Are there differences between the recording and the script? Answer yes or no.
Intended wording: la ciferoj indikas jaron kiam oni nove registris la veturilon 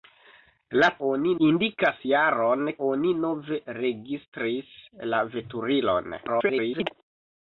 yes